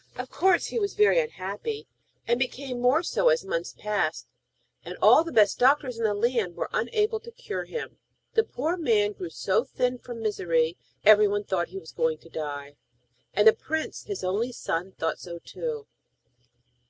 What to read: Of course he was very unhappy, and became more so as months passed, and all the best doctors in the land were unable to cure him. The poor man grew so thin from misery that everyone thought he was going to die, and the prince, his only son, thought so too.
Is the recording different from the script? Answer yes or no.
yes